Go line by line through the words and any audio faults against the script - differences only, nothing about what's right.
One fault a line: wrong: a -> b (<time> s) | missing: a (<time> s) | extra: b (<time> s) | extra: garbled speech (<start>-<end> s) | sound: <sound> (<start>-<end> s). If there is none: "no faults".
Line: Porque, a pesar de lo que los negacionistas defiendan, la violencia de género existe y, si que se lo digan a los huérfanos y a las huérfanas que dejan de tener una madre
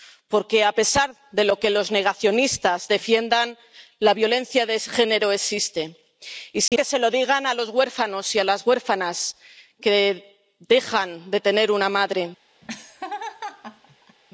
sound: dropout (6.7-6.7 s)
sound: laugh (12.6-14.2 s)